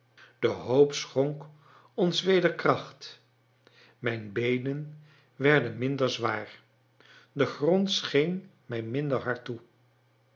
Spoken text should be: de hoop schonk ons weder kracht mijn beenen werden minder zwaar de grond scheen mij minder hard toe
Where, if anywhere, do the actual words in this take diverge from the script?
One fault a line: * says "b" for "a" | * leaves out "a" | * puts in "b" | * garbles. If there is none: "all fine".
all fine